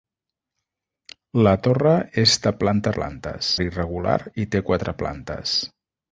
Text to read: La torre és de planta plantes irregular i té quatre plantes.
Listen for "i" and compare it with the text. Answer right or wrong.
right